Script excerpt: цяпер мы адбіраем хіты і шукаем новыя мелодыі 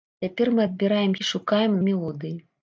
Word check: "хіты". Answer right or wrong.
wrong